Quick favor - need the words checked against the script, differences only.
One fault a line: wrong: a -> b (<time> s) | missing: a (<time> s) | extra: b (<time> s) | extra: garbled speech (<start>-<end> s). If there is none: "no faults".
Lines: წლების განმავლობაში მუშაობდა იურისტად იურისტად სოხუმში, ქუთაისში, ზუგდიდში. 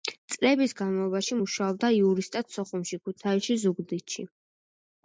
missing: იურისტად (2.6 s)